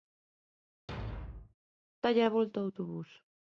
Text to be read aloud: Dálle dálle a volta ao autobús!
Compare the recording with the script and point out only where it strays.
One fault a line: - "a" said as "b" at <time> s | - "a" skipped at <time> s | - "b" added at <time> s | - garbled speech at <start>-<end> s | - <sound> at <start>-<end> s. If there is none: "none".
- thud at 0.9-1.5 s
- "dálle" skipped at 2.2 s